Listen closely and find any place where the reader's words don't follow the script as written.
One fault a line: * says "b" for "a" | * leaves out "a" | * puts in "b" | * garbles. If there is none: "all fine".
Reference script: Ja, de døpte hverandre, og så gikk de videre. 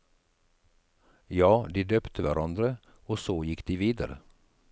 all fine